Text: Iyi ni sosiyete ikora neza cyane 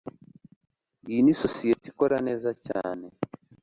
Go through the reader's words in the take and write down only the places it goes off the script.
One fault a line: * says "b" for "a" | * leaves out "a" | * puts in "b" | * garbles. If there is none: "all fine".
all fine